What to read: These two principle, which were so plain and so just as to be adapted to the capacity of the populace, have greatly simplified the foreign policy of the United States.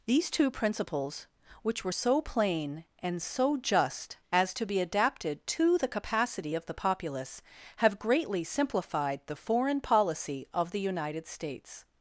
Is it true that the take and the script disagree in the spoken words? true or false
true